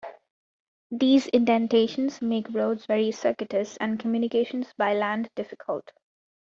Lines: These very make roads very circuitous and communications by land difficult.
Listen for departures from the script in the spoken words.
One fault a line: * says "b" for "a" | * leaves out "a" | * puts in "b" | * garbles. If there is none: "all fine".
* says "indentations" for "very"